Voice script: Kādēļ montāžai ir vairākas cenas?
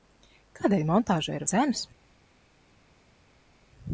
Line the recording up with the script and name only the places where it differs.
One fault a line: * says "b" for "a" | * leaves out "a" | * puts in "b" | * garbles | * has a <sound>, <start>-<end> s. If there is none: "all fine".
* leaves out "vairākas"